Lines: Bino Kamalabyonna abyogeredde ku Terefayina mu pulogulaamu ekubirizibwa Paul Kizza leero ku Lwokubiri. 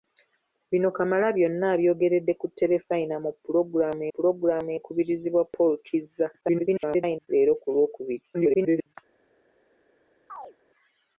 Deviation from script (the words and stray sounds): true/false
true